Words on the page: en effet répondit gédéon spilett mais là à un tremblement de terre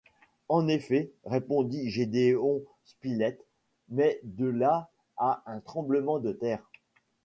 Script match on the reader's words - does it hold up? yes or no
no